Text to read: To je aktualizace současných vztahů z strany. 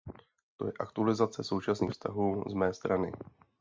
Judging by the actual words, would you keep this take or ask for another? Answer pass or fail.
fail